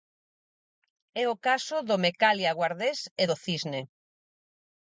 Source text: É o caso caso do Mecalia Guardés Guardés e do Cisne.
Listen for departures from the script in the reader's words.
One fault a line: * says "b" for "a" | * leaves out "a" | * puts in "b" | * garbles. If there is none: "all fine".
* leaves out "caso"
* leaves out "Guardés"